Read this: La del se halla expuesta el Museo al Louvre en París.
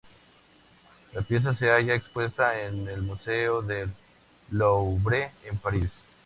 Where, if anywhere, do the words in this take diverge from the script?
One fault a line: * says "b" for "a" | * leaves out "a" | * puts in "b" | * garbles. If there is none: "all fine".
* says "pieza" for "del"
* puts in "en"
* says "del" for "al"